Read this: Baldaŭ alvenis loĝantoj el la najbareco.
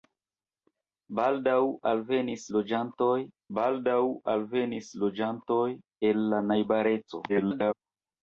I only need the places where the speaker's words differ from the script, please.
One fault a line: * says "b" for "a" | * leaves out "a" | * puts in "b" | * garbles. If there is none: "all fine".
* puts in "baldaŭ alvenis loĝantoj"
* garbles